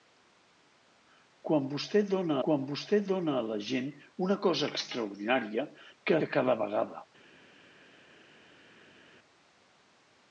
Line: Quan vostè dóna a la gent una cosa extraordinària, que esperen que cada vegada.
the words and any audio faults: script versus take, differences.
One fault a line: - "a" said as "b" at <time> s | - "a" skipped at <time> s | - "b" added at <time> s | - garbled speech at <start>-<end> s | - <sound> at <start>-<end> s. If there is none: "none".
- "quan vostè dóna" added at 2.5 s
- "esperen" skipped at 6.2 s